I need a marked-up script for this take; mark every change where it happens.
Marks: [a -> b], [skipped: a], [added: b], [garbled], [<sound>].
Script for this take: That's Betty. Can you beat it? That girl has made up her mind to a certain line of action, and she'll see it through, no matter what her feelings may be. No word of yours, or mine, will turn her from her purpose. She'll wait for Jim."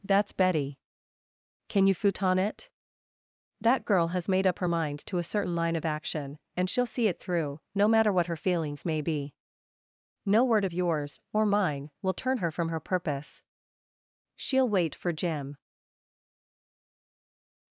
That's Betty. Can you [beat -> futon] it? That girl has made up her mind to a certain line of action, and she'll see it through, no matter what her feelings may be. No word of yours, or mine, will turn her from her purpose. She'll wait for Jim."